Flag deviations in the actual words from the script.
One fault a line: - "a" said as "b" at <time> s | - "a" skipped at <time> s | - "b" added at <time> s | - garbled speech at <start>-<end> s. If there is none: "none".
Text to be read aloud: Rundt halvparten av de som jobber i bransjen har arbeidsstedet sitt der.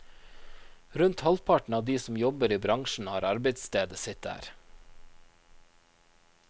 none